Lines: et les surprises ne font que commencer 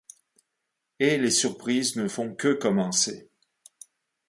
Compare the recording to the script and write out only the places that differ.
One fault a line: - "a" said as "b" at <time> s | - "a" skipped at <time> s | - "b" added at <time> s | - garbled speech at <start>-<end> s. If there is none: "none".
none